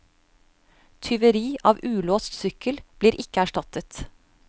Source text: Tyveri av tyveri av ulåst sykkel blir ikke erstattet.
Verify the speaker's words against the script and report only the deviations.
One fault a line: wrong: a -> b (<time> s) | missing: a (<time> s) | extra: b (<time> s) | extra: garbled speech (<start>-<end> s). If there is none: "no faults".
missing: tyveri av (1.8 s)